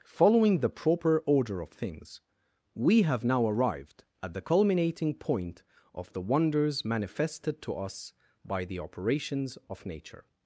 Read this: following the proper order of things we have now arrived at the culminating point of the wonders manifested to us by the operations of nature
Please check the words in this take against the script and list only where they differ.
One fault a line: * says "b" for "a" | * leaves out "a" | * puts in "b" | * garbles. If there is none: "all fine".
all fine